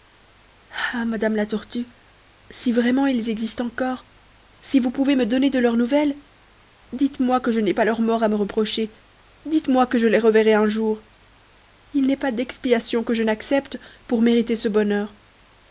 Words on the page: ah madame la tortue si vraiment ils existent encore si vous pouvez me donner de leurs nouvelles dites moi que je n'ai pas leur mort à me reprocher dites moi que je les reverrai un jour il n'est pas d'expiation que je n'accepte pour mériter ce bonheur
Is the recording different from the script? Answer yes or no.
no